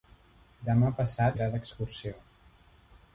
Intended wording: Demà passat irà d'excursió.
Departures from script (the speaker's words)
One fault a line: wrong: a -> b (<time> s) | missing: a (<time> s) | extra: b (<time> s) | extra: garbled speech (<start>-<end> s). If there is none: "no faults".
no faults